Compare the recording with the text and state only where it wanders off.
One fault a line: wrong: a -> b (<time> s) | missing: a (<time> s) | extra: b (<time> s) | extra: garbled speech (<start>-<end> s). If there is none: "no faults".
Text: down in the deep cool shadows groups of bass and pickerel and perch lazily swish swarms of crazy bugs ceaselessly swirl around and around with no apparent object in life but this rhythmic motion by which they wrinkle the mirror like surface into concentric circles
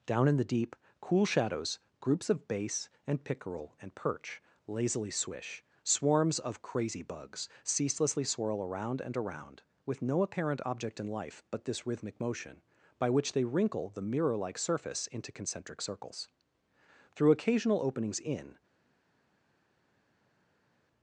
extra: through occasional openings in (17.1 s)